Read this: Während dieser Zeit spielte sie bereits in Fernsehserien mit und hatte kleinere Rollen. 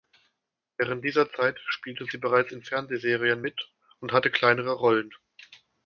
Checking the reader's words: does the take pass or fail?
pass